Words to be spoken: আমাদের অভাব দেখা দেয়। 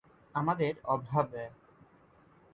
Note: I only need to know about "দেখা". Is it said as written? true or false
false